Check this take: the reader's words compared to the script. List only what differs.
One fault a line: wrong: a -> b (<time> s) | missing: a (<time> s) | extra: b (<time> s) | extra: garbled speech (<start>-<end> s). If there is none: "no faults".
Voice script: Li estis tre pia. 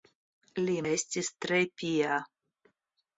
no faults